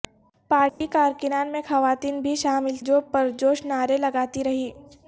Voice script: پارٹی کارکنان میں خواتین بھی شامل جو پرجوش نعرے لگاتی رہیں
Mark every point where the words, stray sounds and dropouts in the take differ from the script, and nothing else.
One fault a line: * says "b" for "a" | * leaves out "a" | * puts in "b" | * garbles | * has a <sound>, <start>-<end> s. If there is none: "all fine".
* has a dropout, 0.7-0.8 s